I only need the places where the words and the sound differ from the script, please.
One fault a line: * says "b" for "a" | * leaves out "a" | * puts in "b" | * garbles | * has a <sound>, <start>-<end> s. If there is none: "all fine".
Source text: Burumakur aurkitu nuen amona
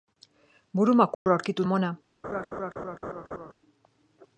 * has a dropout, 1.1-1.3 s
* leaves out "nuen"
* has a laugh, 2.2-3.5 s